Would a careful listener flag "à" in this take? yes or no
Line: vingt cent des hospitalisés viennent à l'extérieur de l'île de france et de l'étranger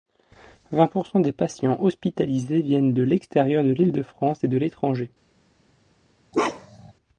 yes